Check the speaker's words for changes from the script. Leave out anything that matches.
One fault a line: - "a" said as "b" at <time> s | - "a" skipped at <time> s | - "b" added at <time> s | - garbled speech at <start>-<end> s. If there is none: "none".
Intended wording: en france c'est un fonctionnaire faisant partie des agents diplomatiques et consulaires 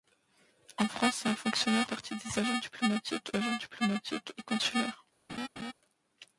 - "faisant" skipped at 1.9 s
- "agents diplomatiques" added at 3.4 s